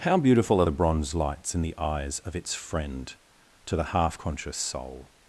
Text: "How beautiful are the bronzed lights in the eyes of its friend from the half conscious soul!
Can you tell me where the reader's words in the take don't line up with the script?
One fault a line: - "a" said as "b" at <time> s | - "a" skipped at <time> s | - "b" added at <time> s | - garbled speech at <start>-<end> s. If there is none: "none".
- "bronzed" said as "bronze" at 0.7 s
- "from" said as "to" at 3.6 s